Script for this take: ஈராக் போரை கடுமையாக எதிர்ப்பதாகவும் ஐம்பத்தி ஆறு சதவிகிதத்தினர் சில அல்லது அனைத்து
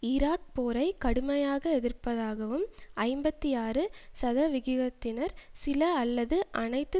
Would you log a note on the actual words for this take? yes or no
no